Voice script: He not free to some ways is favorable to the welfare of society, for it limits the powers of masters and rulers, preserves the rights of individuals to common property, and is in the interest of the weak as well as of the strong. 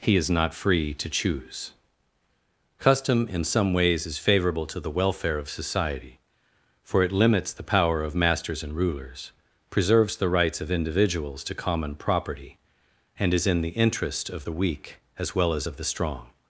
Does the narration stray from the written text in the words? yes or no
yes